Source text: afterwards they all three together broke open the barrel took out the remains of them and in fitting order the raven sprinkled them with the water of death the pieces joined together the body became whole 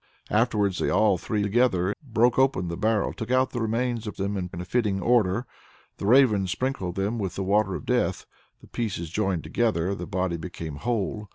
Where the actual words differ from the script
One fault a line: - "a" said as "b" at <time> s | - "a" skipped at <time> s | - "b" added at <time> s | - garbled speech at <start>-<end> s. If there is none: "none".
none